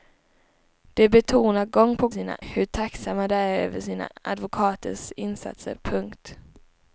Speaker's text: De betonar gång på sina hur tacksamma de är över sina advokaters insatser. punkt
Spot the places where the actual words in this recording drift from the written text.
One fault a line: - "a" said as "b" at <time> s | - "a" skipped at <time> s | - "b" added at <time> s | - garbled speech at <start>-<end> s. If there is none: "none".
none